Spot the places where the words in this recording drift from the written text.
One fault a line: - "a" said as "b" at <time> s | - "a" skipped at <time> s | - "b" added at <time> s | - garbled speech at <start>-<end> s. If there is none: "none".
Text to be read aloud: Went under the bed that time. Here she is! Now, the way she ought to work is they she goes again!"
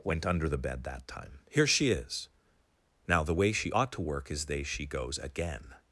none